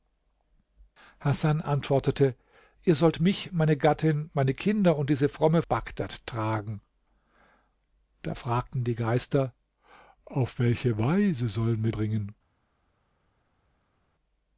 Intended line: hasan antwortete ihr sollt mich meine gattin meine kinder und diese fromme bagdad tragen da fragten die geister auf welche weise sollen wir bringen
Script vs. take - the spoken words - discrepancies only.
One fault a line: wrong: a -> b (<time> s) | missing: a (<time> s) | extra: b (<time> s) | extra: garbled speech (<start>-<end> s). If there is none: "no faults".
no faults